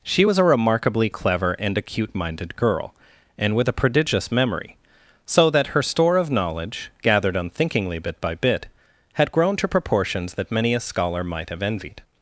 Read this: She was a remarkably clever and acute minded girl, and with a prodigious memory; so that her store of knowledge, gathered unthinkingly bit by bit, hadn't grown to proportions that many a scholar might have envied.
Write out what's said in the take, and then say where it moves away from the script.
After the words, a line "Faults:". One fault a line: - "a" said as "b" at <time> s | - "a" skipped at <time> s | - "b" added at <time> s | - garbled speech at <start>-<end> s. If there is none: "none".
She was a remarkably clever and acute minded girl, and with a prodigious memory; so that her store of knowledge, gathered unthinkingly bit by bit, had grown to proportions that many a scholar might have envied.
Faults:
- "hadn't" said as "had" at 9.1 s